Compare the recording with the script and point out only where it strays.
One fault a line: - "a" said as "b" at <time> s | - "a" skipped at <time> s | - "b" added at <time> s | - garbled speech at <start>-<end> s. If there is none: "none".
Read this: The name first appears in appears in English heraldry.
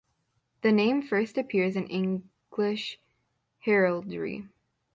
- "appears in" skipped at 1.9 s